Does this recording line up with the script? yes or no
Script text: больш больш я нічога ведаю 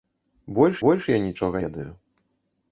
yes